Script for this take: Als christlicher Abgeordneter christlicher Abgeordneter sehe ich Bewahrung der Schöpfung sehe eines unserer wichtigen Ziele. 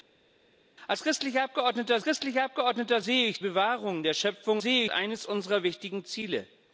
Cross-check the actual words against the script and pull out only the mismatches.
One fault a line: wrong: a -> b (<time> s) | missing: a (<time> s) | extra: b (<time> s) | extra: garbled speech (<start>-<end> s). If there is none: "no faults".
no faults